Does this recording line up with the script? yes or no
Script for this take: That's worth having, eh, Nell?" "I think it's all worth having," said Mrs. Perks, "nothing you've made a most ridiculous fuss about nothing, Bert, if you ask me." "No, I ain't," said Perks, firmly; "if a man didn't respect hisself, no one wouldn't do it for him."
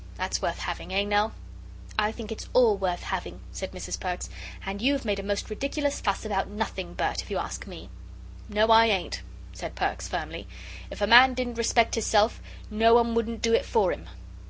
no